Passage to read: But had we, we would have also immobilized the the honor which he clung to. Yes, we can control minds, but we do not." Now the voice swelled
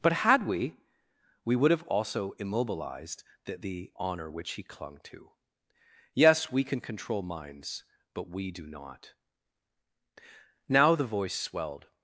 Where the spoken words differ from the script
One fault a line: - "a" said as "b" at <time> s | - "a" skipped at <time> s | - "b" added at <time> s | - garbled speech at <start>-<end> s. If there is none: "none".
none